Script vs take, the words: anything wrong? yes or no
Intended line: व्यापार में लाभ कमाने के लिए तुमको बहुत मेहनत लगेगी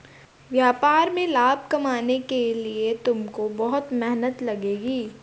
no